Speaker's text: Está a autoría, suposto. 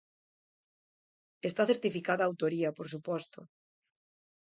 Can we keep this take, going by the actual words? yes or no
no